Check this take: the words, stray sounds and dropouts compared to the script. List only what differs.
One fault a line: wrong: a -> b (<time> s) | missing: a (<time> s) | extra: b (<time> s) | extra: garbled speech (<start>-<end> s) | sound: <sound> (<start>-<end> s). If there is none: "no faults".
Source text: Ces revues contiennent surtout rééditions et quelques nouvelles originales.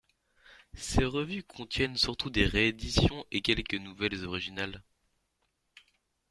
extra: des (2.3 s)